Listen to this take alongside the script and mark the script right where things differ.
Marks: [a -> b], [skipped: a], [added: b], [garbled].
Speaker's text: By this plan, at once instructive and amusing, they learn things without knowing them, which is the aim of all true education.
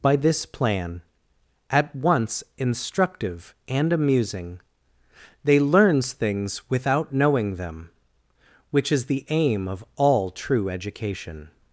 By this plan, at once instructive and amusing, they [learn -> learns] things without knowing them, which is the aim of all true education.